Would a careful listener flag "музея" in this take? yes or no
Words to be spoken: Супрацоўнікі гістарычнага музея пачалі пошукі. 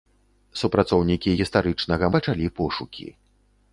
yes